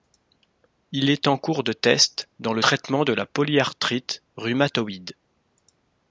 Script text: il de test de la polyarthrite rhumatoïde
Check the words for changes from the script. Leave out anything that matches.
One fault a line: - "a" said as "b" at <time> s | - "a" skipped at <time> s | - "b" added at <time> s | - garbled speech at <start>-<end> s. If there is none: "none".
- "est en cours" added at 1.1 s
- "dans le traitement" added at 2.4 s